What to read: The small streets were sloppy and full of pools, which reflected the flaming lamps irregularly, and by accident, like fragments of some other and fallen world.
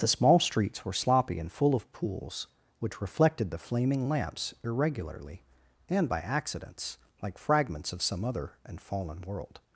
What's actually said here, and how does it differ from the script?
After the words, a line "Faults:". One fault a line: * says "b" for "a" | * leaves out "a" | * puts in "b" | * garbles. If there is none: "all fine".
The small streets were sloppy and full of pools, which reflected the flaming lamps irregularly, and by accidents, like fragments of some other and fallen world.
Faults:
* says "accidents" for "accident"